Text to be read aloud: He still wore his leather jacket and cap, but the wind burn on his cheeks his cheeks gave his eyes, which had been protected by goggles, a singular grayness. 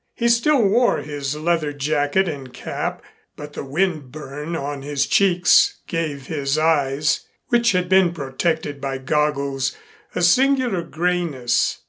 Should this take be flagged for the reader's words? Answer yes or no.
yes